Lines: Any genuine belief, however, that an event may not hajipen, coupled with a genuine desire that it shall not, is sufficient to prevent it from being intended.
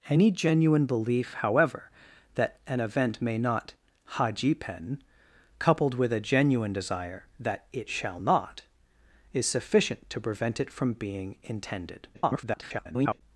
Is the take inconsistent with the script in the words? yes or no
yes